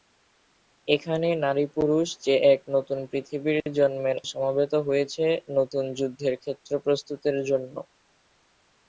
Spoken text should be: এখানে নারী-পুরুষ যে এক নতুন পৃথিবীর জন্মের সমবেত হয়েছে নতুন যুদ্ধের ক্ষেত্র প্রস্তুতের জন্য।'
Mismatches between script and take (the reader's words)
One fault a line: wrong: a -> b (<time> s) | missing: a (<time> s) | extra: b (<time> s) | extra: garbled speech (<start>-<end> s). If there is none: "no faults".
no faults